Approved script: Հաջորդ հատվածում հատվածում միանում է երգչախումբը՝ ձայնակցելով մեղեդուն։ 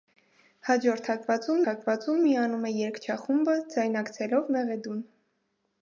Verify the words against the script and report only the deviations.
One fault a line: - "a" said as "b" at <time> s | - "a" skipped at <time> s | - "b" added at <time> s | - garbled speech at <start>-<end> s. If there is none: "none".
none